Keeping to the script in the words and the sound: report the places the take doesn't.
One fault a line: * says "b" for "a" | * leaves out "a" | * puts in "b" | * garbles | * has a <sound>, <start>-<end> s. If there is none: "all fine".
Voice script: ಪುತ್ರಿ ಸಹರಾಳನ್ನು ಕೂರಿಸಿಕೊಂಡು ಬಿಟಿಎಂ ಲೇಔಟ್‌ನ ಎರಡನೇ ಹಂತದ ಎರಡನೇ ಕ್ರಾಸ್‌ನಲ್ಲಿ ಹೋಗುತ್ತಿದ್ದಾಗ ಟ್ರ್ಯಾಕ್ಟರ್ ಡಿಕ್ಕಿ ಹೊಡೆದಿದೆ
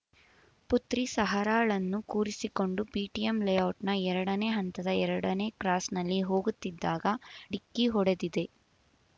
* leaves out "ಟ್ರ್ಯಾಕ್ಟರ್"